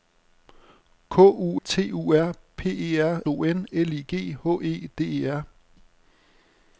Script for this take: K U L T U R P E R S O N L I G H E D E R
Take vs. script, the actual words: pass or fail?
fail